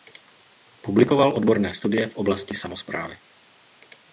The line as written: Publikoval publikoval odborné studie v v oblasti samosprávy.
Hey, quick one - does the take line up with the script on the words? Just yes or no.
no